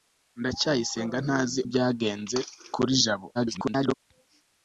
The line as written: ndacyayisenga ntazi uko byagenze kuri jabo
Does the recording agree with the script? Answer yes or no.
no